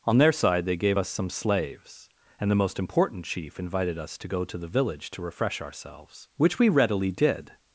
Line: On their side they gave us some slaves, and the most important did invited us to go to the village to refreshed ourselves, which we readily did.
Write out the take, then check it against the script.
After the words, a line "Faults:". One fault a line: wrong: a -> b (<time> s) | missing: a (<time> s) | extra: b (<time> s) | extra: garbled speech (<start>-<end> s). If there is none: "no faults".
On their side they gave us some slaves, and the most important chief invited us to go to the village to refresh ourselves, which we readily did.
Faults:
wrong: did -> chief (3.2 s)
wrong: refreshed -> refresh (5.2 s)